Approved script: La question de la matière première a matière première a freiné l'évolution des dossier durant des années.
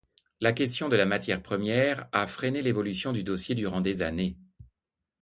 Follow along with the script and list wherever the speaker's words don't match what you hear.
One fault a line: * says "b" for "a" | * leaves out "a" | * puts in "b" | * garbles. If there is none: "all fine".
* leaves out "matière première a"
* says "du" for "des"